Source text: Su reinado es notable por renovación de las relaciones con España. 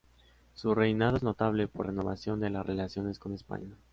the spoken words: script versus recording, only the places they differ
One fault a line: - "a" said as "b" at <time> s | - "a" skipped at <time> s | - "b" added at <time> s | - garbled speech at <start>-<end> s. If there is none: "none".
none